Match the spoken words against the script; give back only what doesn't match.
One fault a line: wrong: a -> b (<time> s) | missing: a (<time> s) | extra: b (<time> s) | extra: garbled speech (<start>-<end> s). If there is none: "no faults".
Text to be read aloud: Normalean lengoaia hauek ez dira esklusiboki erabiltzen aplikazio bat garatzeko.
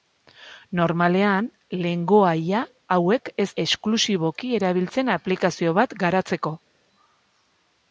missing: dira (3.5 s)